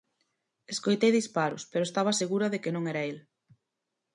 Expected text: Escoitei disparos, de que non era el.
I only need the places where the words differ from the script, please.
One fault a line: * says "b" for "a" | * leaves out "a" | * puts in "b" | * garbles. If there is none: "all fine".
* puts in "pero estaba segura"